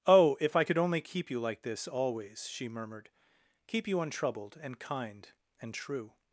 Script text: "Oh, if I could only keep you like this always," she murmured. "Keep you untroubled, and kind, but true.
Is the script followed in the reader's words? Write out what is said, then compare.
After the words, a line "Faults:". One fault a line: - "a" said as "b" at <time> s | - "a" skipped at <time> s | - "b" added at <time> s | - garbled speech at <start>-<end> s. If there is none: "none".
"Oh, if I could only keep you like this always," she murmured. "Keep you untroubled, and kind, and true.
Faults:
- "but" said as "and" at 5.6 s